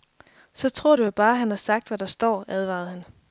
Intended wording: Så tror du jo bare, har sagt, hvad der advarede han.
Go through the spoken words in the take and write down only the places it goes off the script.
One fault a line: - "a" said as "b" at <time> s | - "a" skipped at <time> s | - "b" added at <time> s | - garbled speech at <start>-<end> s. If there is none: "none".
- "han" added at 1.3 s
- "står" added at 2.0 s